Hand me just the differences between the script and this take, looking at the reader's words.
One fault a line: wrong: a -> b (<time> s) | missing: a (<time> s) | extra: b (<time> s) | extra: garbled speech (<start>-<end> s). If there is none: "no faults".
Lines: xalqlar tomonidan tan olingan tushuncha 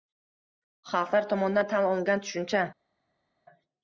no faults